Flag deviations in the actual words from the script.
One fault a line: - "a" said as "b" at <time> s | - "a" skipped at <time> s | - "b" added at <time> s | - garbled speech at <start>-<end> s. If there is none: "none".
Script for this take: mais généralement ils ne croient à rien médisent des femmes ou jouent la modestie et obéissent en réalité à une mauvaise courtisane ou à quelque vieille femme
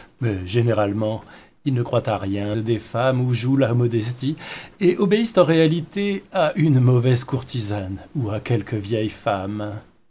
- "médisent" skipped at 2.5 s